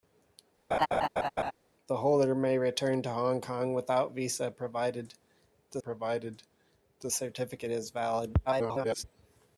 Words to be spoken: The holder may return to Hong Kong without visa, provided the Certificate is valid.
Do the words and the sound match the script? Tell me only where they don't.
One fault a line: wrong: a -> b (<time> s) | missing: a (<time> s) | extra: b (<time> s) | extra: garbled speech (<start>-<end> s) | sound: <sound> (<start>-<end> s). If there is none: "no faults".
sound: laugh (0.7-1.5 s)
extra: provided the (5.8 s)
extra: garbled speech (8.5-9.0 s)